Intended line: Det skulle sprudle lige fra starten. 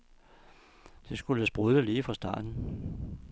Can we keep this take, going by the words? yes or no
yes